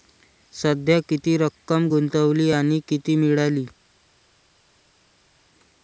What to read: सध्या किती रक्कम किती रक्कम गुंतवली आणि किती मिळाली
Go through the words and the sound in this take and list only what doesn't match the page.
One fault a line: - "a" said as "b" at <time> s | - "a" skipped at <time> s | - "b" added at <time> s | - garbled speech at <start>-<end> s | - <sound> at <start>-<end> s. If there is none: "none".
- "किती रक्कम" skipped at 1.9 s